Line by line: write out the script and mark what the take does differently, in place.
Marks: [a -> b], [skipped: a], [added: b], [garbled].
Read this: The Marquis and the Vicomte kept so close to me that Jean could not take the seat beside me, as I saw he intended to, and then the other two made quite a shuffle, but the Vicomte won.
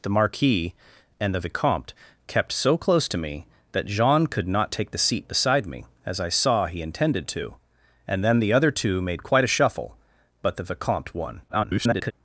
The Marquis and the Vicomte kept so close to me that Jean could not take the seat beside me, as I saw he intended to, and then the other two made quite a shuffle, but the Vicomte won. [garbled]